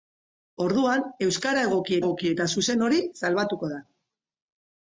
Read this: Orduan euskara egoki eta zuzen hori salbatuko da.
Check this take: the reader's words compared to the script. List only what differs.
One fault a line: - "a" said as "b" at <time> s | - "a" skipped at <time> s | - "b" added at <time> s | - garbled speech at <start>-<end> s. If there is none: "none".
- "egoki" added at 2.0 s